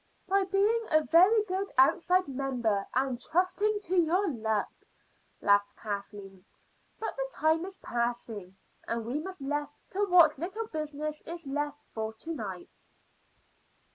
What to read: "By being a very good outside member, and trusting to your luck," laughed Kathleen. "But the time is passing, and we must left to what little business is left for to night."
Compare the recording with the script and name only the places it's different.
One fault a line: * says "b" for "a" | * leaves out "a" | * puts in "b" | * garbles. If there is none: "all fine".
all fine